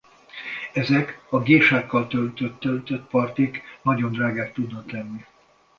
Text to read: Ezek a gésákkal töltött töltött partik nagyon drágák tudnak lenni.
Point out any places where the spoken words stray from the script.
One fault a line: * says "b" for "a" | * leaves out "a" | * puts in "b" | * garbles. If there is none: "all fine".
all fine